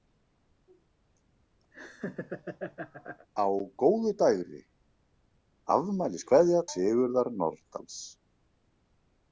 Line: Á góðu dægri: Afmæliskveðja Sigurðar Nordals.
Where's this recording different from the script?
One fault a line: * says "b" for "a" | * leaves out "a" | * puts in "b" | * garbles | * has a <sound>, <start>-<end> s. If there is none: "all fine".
* has a laugh, 1.7-3.3 s